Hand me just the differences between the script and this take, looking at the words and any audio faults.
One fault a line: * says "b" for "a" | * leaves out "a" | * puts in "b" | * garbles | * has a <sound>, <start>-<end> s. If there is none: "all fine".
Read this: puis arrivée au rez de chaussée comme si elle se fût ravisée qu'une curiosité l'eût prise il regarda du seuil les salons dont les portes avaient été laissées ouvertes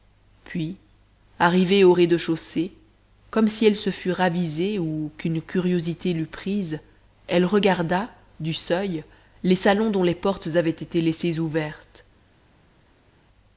* puts in "ou"
* says "elle" for "il"